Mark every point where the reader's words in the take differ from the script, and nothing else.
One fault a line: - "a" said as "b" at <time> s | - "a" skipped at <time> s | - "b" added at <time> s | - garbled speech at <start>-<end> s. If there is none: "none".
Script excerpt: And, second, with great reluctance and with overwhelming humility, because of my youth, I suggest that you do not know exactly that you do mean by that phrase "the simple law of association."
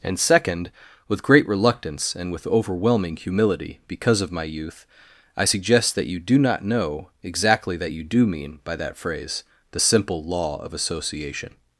none